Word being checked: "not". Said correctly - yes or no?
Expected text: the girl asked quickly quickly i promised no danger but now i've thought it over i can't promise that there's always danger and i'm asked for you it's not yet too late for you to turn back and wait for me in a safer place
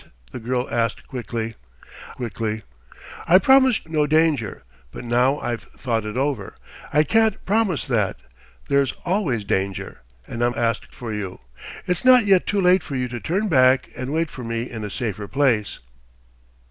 yes